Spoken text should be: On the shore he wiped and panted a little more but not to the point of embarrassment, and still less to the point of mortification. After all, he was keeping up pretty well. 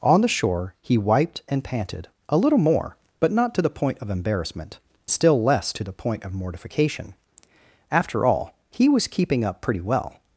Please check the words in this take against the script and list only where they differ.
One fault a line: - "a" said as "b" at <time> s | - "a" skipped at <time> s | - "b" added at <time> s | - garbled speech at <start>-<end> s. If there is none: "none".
- "and" skipped at 4.8 s